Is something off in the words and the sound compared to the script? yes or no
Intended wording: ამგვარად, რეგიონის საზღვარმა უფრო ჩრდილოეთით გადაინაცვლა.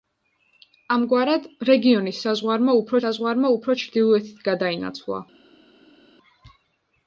yes